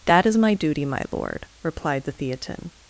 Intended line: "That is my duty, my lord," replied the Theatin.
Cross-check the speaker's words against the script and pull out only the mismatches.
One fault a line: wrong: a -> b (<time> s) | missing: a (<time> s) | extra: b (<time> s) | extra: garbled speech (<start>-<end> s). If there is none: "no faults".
no faults